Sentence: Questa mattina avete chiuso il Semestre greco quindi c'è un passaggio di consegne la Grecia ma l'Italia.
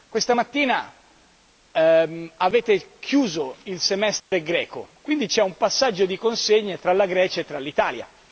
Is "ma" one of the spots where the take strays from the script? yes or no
yes